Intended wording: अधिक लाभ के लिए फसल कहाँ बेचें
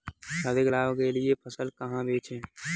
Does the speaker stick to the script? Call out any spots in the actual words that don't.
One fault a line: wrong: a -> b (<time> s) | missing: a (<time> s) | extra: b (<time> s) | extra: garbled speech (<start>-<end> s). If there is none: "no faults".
no faults